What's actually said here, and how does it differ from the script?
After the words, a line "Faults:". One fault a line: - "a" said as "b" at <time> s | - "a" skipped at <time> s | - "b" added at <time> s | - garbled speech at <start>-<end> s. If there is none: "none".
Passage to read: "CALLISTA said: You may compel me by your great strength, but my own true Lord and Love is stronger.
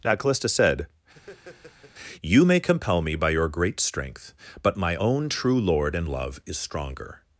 now "CALLISTA said: You may compel me by your great strength, but my own true Lord and Love is stronger.
Faults:
- "now" added at 0.0 s